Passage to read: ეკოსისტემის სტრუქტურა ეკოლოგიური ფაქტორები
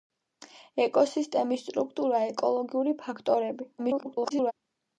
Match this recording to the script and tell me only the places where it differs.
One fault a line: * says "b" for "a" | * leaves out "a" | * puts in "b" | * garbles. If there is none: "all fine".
* garbles